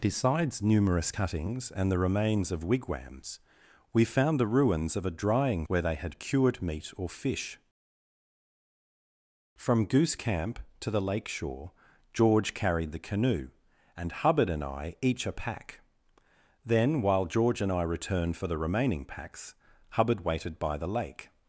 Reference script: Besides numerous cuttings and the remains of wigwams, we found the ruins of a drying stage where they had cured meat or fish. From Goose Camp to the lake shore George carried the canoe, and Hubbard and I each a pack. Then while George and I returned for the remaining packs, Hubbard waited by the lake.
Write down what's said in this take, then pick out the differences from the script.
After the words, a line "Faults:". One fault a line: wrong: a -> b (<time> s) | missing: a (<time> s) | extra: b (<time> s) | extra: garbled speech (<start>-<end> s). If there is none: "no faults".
Besides numerous cuttings and the remains of wigwams, we found the ruins of a drying where they had cured meat or fish. From Goose Camp to the lake shore George carried the canoe, and Hubbard and I each a pack. Then while George and I returned for the remaining packs, Hubbard waited by the lake.
Faults:
missing: stage (5.7 s)